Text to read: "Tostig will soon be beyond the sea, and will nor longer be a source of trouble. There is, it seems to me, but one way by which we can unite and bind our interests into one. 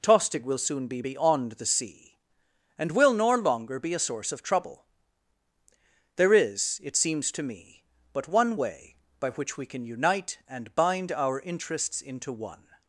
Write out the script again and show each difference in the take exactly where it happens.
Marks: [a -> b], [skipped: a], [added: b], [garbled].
"Tostig will soon be beyond the sea, and will nor longer be a source of trouble. There is, it seems to me, but one way by which we can unite and bind our interests into one.